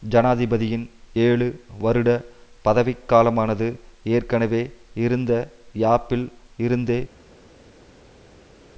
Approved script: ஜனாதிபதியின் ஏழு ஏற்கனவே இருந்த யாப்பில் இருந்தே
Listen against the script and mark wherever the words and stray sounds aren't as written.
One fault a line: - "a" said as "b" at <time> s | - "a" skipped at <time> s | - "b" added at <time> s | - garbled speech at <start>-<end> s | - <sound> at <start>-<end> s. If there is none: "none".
- "வருட பதவிக்காலமானது" added at 1.8 s